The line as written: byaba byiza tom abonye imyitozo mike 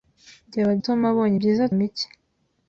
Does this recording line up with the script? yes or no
no